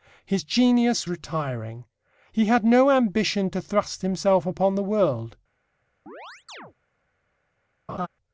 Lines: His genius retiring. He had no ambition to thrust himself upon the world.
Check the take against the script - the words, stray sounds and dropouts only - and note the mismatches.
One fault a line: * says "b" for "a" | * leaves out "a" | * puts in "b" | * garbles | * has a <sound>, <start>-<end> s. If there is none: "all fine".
* has a chirp, 6.1-6.7 s
* has a laugh, 7.9-8.1 s